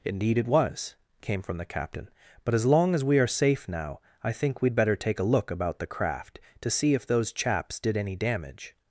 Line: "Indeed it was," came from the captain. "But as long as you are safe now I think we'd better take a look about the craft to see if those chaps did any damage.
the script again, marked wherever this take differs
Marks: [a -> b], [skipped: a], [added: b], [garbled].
"Indeed it was," came from the captain. "But as long as [you -> we] are safe now I think we'd better take a look about the craft to see if those chaps did any damage.